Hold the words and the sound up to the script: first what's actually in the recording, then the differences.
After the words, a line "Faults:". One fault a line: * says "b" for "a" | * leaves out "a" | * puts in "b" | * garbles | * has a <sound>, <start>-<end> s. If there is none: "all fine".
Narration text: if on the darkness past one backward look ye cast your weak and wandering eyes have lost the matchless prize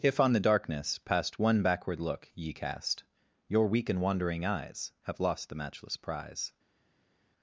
if on the darkness past one backward look ye cast your weak and wandering eyes have lost the matchless prize
Faults:
all fine